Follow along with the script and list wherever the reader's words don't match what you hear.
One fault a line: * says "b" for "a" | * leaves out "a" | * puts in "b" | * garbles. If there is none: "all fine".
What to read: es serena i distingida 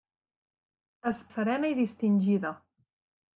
all fine